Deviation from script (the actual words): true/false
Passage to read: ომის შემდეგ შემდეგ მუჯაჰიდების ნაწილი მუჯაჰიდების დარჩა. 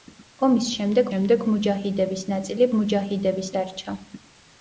false